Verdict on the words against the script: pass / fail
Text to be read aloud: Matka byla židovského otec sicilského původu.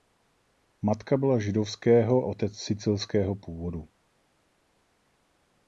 pass